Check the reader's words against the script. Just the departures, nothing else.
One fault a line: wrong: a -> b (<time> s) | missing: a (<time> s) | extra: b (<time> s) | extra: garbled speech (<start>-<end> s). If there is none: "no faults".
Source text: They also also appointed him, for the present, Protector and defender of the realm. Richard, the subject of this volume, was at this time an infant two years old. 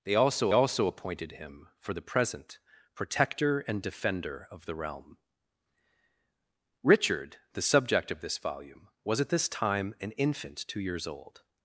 no faults